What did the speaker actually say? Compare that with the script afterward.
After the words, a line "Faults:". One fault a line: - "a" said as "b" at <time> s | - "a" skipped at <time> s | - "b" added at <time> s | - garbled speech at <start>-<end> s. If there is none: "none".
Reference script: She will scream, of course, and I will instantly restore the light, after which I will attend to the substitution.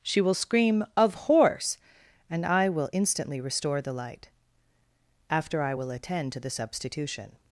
She will scream, of horse, and I will instantly restore the light, after I will attend to the substitution.
Faults:
- "course" said as "horse" at 1.1 s
- "which" skipped at 5.6 s